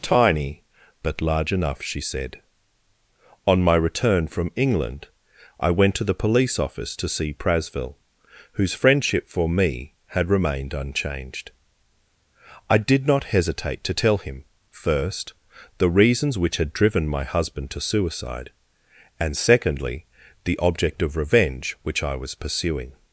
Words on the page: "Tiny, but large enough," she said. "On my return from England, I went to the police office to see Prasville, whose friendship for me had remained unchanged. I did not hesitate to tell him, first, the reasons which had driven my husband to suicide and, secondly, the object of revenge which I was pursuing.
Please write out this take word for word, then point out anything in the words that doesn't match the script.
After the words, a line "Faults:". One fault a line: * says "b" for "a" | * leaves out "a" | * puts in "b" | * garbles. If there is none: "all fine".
"Tiny, but large enough," she said. "On my return from England, I went to the police office to see Prasville, whose friendship for me had remained unchanged. I did not hesitate to tell him, first, the reasons which had driven my husband to suicide and, secondly, the object of revenge which I was pursuing.
Faults:
all fine